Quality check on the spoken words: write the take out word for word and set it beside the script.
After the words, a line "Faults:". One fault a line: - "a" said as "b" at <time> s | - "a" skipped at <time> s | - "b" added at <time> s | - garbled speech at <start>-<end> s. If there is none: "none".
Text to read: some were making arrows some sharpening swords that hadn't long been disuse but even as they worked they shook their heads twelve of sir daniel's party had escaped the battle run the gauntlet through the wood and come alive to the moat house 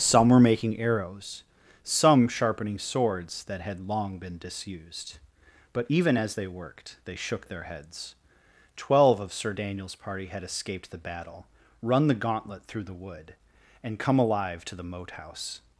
some were making arrows some sharpening swords that had long been disused but even as they worked they shook their heads twelve of sir daniel's party had escaped the battle run the gauntlet through the wood and come alive to the moat house
Faults:
- "hadn't" said as "had" at 3.6 s
- "disuse" said as "disused" at 4.4 s